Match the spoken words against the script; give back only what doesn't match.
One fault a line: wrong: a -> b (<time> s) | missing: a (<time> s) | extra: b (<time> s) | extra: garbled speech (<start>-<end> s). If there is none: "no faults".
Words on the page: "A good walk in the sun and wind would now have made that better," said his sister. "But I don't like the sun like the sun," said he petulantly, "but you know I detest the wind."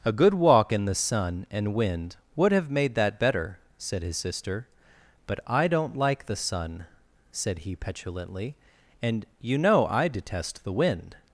missing: now (2.5 s)
missing: like the sun (6.9 s)
wrong: but -> and (9.0 s)